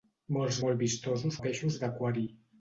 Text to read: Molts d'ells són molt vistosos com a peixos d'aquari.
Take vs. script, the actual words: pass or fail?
fail